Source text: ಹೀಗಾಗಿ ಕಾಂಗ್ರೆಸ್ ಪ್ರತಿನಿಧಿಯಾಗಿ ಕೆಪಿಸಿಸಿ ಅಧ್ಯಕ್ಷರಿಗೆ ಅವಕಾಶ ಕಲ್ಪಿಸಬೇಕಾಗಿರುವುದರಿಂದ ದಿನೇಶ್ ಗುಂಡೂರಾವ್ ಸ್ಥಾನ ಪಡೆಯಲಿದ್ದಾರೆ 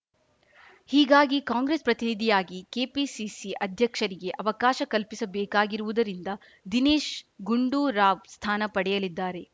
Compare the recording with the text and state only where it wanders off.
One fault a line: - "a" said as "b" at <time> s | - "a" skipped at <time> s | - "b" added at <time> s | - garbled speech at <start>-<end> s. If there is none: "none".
none